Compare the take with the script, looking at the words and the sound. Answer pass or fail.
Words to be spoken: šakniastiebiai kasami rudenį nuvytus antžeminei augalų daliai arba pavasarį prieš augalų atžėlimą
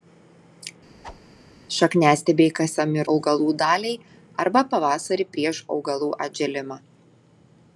fail